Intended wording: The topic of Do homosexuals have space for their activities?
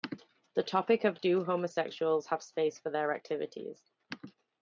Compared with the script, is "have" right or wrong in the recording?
right